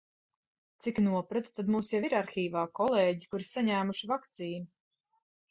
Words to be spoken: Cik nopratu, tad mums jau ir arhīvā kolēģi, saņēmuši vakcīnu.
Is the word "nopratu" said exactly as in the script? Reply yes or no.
yes